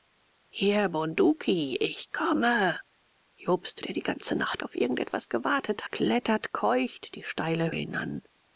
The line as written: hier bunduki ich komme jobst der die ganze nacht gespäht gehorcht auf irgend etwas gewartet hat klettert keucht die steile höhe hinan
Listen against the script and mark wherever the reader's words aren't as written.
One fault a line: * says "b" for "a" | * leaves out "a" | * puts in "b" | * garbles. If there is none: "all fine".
* leaves out "gespäht gehorcht"
* leaves out "hat"
* leaves out "höhe"